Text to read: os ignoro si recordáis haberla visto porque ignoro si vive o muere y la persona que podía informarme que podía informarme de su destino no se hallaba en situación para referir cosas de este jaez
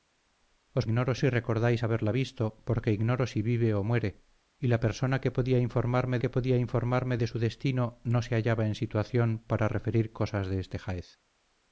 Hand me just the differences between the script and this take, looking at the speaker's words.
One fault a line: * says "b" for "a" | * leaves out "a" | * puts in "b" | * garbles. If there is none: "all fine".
all fine